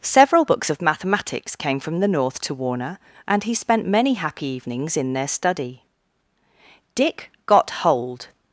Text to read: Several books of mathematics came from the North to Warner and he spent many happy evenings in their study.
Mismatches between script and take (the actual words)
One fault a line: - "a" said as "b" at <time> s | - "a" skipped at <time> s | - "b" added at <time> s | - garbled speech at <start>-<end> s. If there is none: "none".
- "Dick got hold" added at 6.9 s